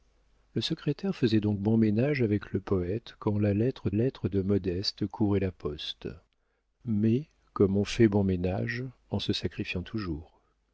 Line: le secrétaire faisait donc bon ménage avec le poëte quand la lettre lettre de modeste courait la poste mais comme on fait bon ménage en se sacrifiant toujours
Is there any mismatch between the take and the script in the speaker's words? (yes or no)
no